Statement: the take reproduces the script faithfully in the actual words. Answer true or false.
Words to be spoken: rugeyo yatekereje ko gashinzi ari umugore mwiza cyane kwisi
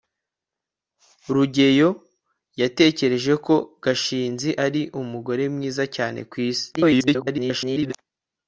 false